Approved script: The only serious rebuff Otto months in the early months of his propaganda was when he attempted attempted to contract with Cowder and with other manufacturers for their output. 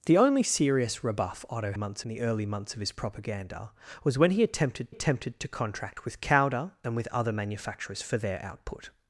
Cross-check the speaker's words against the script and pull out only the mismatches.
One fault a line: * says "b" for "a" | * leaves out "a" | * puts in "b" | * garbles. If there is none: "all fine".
all fine